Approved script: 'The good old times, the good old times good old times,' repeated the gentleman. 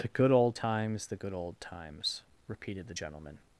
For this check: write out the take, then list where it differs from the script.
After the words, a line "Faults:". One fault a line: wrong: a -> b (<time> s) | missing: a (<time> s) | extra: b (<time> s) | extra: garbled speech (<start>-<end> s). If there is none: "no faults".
'The good old times, the good old times,' repeated the gentleman.
Faults:
missing: good old times (2.2 s)